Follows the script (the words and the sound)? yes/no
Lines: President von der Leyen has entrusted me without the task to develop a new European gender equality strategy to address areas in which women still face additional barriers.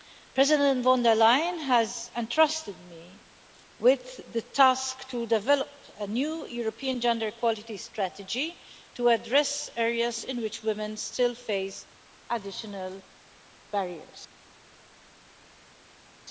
no